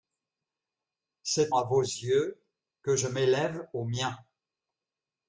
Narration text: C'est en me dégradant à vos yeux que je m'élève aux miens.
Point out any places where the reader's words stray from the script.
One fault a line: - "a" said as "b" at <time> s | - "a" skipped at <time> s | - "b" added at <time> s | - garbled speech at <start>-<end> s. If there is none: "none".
- "en me dégradant" skipped at 1.6 s